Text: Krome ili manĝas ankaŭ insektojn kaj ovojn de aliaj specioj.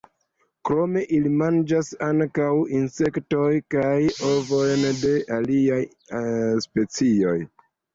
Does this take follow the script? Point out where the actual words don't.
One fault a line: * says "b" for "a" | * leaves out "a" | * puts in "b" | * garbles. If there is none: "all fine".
all fine